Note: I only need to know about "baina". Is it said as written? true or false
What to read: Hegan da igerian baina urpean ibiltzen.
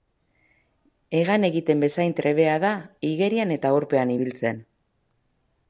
false